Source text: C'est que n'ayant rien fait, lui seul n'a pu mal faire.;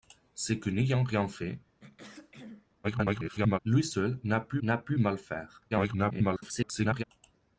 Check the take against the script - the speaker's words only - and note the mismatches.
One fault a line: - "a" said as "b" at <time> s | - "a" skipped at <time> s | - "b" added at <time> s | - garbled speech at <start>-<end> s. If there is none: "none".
- garbled speech at 2.8-3.6 s
- "n'a pu" added at 4.6 s
- garbled speech at 5.7-7.0 s